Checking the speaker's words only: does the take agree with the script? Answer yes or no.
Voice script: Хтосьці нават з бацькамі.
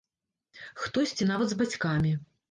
yes